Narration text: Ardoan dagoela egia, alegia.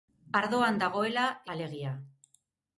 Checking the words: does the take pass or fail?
fail